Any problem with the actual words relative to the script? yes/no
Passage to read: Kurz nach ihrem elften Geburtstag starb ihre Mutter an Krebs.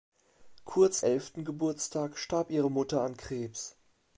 yes